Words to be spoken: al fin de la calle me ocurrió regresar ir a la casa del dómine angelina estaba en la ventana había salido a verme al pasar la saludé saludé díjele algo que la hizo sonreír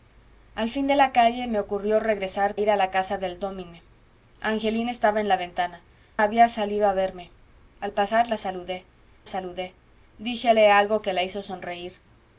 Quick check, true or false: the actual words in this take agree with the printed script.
true